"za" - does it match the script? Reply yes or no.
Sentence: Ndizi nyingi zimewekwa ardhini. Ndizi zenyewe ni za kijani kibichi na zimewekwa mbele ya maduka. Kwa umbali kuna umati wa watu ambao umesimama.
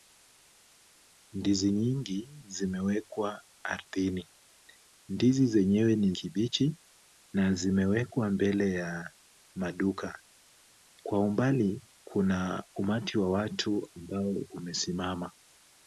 no